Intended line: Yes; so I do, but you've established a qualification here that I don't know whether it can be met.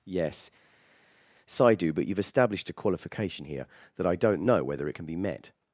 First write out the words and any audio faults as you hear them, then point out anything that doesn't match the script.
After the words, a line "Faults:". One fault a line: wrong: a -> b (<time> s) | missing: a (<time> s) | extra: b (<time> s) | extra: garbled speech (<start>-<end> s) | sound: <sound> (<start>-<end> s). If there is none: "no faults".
Yes; so I do, but you've established a qualification here that I don't know whether it can be met.
Faults:
no faults